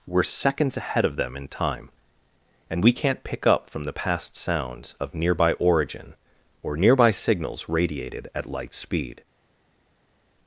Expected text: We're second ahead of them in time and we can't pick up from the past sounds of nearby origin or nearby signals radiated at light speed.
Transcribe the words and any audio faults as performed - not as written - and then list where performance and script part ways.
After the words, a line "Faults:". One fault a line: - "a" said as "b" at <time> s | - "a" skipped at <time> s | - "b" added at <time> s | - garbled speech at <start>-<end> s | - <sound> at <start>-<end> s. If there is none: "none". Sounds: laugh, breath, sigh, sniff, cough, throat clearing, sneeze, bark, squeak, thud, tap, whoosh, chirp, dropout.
We're seconds ahead of them in time and we can't pick up from the past sounds of nearby origin or nearby signals radiated at light speed.
Faults:
- "second" said as "seconds" at 0.2 s